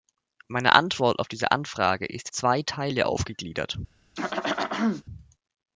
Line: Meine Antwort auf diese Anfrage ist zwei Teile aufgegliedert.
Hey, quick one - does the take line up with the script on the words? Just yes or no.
yes